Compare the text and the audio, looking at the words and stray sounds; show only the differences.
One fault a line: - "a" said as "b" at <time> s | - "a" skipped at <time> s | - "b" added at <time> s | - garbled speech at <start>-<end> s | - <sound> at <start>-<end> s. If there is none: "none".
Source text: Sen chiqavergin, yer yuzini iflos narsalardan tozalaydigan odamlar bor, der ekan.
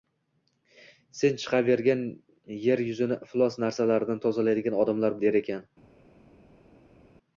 - "bor" skipped at 5.2 s